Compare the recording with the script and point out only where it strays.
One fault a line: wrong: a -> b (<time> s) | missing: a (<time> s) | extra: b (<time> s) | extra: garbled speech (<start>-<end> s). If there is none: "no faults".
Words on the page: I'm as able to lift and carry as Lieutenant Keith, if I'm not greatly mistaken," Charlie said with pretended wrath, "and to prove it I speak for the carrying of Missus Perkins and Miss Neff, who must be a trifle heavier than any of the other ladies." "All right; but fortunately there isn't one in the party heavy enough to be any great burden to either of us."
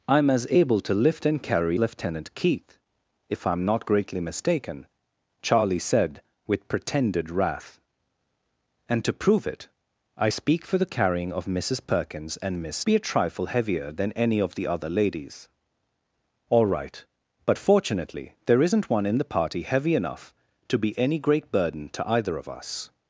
missing: as (1.8 s)
missing: Neff who must (12.9 s)